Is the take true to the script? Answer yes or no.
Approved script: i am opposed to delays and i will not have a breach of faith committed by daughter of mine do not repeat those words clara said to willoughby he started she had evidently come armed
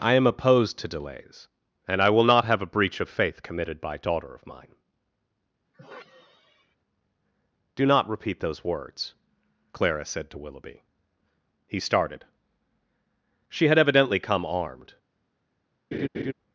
yes